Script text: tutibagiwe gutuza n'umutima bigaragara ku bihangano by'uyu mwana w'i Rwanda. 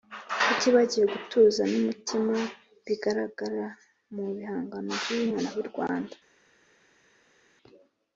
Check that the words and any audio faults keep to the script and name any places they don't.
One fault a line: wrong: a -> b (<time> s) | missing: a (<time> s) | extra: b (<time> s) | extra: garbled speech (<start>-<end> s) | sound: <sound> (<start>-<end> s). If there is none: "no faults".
wrong: ku -> mu (4.1 s)